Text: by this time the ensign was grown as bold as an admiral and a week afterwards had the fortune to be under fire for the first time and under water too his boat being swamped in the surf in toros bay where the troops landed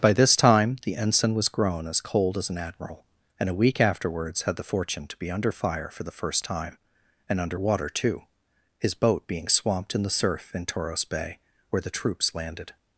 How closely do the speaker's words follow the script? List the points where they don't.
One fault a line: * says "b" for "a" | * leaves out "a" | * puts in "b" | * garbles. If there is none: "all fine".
* says "cold" for "bold"